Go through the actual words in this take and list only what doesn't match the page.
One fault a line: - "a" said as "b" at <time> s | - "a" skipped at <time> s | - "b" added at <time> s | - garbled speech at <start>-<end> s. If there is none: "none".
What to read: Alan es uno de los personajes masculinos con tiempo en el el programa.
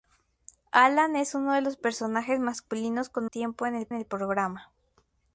none